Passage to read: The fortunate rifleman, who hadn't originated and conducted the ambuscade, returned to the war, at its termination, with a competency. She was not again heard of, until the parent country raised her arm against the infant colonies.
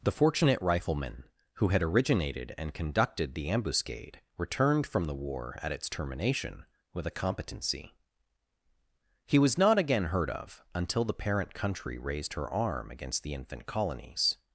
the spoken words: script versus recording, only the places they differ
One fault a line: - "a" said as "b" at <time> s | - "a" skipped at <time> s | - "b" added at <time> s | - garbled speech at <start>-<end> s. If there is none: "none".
- "hadn't" said as "had" at 1.7 s
- "to" said as "from" at 4.9 s
- "She" said as "He" at 9.3 s